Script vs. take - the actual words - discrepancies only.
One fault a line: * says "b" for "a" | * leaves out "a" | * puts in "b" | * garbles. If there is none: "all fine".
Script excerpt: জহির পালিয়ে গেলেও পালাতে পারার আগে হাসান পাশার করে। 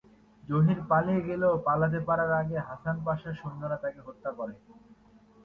* puts in "সৈন্যরা তাকে হত্যা"